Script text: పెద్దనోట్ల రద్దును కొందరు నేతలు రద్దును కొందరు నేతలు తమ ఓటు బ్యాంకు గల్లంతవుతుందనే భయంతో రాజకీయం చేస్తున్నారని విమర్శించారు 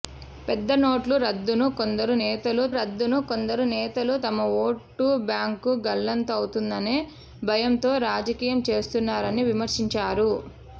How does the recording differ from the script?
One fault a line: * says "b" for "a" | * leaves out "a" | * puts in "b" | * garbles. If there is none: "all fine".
all fine